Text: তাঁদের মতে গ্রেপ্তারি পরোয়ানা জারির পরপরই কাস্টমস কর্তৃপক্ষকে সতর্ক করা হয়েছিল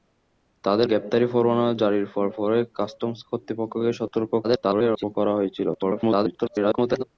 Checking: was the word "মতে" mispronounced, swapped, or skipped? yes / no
yes